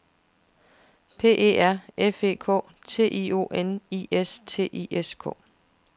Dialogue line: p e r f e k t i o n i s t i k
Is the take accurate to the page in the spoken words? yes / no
no